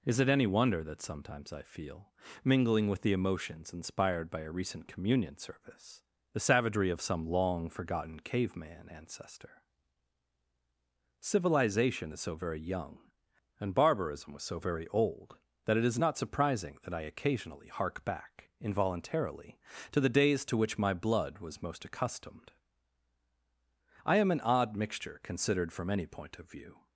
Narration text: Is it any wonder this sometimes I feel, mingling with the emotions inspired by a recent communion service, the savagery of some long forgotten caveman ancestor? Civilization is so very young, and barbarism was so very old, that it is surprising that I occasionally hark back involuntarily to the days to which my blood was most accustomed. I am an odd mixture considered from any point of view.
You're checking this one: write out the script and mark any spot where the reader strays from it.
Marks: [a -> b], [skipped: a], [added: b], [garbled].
Is it any wonder [this -> that] sometimes I feel, mingling with the emotions inspired by a recent communion service, the savagery of some long forgotten caveman ancestor? Civilization is so very young, and barbarism was so very old, that it is [added: not] surprising that I occasionally hark back involuntarily to the days to which my blood was most accustomed. I am an odd mixture considered from any point of view.